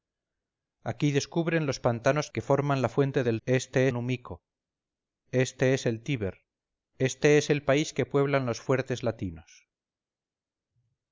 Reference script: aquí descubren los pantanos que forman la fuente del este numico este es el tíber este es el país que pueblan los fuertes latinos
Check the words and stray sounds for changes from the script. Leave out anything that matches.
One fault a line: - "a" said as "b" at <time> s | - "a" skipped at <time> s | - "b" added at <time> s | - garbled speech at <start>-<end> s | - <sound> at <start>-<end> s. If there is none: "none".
none